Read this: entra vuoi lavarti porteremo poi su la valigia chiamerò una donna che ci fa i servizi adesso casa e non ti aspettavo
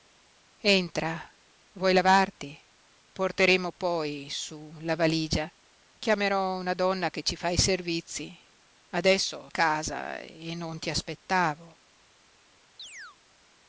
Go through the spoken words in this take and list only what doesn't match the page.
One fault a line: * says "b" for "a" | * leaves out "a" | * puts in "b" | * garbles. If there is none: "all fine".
all fine